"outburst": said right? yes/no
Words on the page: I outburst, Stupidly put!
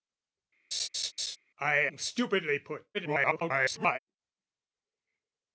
no